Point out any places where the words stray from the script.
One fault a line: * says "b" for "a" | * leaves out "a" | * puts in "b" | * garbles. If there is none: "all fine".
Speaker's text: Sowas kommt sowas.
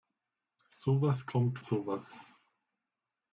all fine